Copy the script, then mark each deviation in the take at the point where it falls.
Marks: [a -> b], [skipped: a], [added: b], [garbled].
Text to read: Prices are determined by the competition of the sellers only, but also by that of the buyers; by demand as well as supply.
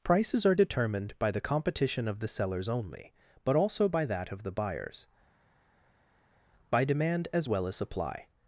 Prices are determined by the competition of the sellers only, but also by that of the buyers; by demand as well as supply.